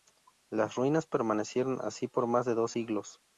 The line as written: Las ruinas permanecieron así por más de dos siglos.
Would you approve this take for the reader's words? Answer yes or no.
yes